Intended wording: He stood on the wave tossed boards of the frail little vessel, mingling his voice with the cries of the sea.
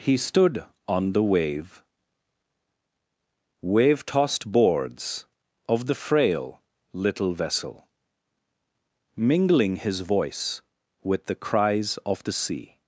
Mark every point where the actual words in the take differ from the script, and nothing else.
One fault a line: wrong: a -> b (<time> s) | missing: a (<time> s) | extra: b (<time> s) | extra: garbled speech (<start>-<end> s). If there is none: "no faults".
extra: wave (3.6 s)